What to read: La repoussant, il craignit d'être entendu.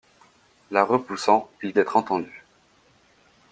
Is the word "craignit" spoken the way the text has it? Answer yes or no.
no